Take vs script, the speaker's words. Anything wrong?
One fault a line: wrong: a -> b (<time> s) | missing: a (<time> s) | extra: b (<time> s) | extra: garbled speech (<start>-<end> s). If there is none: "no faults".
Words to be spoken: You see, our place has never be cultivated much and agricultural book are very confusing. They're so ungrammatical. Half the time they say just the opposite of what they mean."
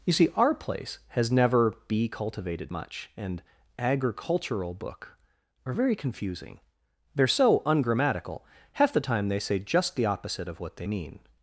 no faults